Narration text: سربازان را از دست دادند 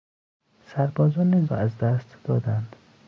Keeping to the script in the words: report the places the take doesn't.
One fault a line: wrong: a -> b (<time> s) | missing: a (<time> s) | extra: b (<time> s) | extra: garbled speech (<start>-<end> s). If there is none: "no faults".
no faults